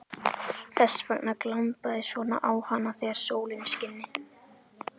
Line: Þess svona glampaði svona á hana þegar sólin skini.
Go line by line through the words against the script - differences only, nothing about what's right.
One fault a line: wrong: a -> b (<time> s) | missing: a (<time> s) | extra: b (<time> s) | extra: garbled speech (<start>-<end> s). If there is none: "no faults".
wrong: svona -> vegna (1.1 s)